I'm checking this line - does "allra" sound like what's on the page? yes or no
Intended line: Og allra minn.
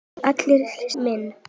yes